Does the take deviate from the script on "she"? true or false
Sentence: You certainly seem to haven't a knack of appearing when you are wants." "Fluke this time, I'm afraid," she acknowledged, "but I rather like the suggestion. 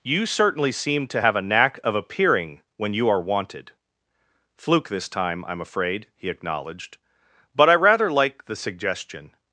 true